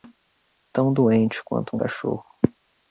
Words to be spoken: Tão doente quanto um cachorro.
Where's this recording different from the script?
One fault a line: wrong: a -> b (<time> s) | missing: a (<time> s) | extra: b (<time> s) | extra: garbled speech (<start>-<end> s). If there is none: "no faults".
no faults